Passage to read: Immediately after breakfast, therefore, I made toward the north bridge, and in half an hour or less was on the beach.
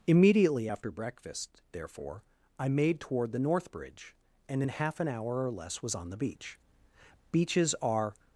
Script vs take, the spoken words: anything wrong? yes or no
yes